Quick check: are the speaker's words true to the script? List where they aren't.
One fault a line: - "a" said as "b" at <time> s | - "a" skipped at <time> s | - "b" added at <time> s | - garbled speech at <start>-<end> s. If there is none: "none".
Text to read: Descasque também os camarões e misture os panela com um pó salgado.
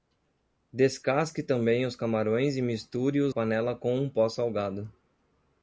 none